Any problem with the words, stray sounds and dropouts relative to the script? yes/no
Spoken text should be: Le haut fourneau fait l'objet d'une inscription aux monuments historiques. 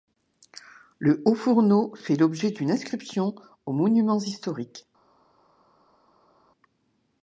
no